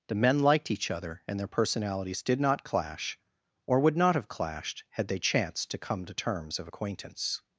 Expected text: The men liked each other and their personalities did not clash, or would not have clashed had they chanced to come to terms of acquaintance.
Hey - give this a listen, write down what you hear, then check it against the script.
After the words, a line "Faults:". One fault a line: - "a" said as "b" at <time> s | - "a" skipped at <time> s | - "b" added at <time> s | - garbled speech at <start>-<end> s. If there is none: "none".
The men liked each other and their personalities did not clash, or would not have clashed had they chanced to come to terms of acquaintance.
Faults:
none